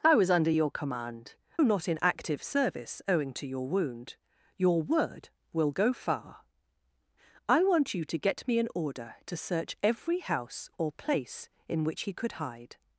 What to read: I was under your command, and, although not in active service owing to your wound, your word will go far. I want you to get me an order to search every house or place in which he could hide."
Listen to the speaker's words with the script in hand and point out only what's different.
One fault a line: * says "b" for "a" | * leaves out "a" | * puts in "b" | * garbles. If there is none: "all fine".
* leaves out "and although"